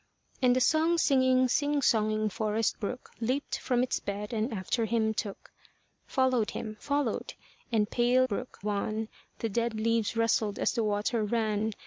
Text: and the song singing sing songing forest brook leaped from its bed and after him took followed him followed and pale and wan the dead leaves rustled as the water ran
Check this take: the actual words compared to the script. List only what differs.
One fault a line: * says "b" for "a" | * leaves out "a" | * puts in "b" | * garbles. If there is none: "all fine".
* says "brook" for "and"